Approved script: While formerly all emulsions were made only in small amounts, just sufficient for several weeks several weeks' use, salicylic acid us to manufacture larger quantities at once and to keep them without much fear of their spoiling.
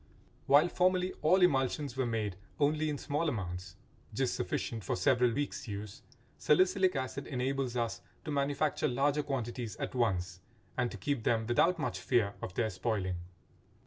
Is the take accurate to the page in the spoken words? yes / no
no